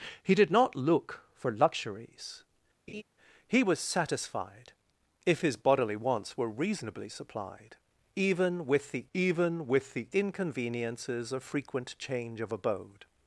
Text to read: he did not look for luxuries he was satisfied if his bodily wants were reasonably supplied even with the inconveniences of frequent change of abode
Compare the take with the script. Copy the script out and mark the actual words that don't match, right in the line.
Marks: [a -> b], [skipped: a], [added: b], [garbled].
he did not look for luxuries he was satisfied if his bodily wants were reasonably supplied even with the [added: even with the] inconveniences of frequent change of abode